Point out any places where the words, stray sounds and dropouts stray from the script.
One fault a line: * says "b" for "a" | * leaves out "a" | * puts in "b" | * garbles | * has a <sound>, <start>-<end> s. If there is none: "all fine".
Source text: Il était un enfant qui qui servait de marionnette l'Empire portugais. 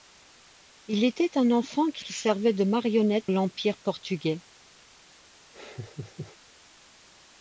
* has a laugh, 5.5-6.4 s